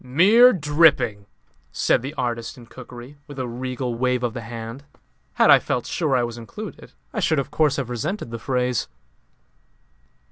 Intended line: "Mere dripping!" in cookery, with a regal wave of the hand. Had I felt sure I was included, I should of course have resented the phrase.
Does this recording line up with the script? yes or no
no